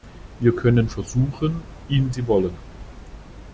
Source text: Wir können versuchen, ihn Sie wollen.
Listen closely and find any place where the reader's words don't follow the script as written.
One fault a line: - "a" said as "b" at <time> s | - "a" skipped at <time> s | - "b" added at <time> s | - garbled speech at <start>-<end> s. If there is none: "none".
none